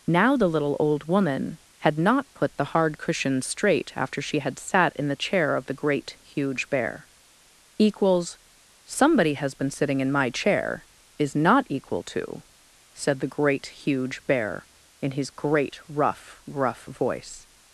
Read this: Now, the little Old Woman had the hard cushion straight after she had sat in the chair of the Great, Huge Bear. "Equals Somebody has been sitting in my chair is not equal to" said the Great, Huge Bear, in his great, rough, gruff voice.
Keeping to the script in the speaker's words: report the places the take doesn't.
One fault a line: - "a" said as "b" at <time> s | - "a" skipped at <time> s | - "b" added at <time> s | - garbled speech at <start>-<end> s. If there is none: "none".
- "not put" added at 2.0 s